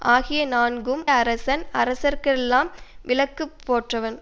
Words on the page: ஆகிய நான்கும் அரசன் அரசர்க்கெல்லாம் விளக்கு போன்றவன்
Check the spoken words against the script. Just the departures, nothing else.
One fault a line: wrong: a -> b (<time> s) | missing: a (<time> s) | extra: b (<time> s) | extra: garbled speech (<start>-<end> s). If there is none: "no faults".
no faults